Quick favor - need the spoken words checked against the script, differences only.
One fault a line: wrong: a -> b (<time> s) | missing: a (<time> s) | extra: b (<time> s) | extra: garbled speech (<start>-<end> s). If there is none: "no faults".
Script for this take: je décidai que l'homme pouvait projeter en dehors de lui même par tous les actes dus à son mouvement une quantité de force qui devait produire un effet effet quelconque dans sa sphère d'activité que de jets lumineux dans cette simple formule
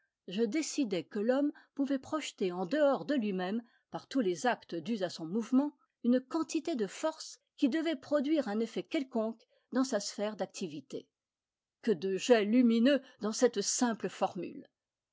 missing: effet (8.8 s)